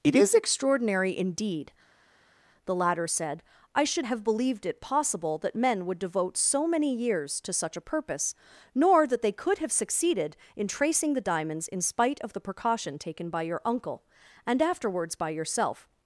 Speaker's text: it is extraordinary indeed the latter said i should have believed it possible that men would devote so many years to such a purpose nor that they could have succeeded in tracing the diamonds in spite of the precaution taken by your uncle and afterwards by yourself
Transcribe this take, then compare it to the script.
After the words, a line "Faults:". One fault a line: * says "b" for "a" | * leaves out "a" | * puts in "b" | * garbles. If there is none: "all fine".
it is extraordinary indeed the latter said i should have believed it possible that men would devote so many years to such a purpose nor that they could have succeeded in tracing the diamonds in spite of the precaution taken by your uncle and afterwards by yourself
Faults:
all fine